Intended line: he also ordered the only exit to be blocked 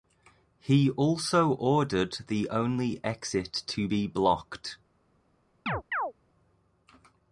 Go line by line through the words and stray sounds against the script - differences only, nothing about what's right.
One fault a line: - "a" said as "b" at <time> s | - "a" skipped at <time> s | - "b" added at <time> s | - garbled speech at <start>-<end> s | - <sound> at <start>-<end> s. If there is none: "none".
- chirp at 5.7-6.1 s